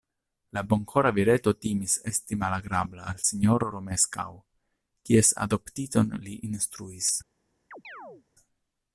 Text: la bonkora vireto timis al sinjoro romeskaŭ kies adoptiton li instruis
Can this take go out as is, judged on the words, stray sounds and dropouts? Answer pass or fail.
fail